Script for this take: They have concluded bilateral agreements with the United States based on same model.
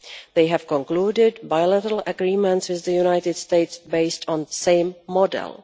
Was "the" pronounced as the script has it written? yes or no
yes